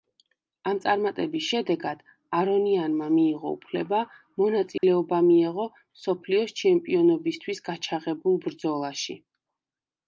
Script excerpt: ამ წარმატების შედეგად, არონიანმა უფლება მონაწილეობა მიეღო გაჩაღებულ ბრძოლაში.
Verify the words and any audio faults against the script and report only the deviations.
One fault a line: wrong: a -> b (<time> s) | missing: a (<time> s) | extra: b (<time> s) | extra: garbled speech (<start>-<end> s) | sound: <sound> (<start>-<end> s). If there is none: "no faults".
extra: მიიღო (3.2 s)
sound: dropout (4.8-4.8 s)
extra: მსოფლიოს ჩემპიონობისთვის (5.7 s)